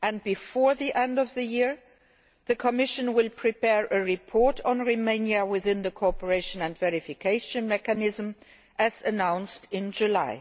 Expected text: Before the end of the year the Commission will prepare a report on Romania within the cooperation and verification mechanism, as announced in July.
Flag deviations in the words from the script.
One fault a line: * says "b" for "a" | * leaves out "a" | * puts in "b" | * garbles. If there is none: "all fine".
all fine